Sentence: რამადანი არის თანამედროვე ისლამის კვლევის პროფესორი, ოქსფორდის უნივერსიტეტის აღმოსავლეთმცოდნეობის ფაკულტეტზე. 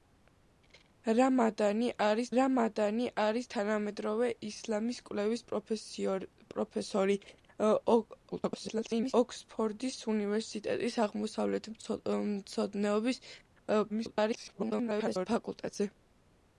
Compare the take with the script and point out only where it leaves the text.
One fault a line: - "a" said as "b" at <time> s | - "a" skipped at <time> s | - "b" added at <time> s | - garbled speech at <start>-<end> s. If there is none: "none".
- "რამადანი არის" added at 2.4 s
- garbled speech at 8.3-9.1 s
- garbled speech at 13.9-15.3 s